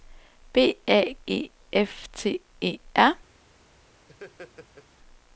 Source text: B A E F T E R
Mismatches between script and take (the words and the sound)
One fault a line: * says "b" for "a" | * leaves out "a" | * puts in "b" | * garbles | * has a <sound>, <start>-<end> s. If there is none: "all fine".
* has a laugh, 4.1-4.9 s